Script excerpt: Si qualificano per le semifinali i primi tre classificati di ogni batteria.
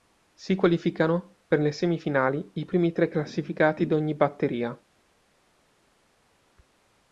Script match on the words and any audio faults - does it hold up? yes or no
yes